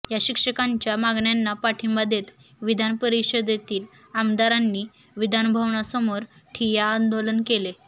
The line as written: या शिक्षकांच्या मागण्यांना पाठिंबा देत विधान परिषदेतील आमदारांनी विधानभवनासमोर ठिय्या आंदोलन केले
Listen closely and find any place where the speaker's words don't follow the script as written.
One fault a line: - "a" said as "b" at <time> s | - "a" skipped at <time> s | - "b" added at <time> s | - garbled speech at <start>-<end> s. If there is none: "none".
none